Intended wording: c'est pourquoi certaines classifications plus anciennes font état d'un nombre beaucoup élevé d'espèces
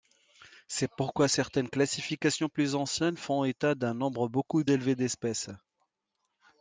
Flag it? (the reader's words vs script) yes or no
no